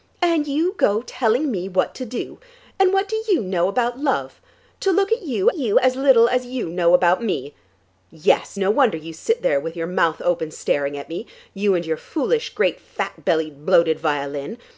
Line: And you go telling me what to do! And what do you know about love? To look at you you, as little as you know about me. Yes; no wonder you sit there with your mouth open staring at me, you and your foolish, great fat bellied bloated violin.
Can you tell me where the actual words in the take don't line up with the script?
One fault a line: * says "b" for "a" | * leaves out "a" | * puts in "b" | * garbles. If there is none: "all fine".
all fine